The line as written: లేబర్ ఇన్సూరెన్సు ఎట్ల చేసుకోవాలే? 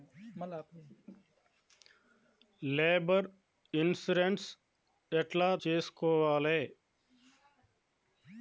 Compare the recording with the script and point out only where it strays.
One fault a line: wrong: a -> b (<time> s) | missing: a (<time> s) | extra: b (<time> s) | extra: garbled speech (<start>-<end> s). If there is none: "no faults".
no faults